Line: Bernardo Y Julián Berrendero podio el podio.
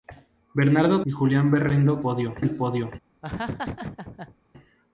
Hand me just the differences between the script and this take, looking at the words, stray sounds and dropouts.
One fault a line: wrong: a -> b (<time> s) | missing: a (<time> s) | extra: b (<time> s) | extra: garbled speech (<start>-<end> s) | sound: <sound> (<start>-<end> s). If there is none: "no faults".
sound: laugh (3.2-4.3 s)